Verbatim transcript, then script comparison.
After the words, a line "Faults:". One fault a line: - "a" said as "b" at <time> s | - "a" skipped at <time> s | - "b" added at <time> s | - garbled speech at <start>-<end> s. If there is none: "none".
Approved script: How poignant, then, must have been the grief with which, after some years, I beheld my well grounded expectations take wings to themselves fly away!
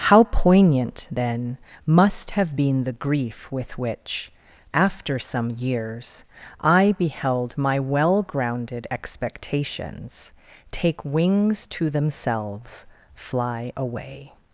How poignant, then, must have been the grief with which, after some years, I beheld my well grounded expectations take wings to themselves fly away!
Faults:
none